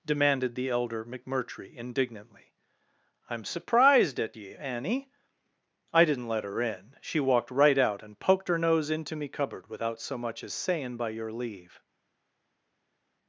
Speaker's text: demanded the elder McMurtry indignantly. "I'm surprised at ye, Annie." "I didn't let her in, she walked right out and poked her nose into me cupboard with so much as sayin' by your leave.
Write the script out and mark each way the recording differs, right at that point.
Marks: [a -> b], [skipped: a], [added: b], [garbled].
demanded the elder McMurtry indignantly. "I'm surprised at ye, Annie." "I didn't let her in, she walked right out and poked her nose into me cupboard [with -> without] so much as sayin' by your leave.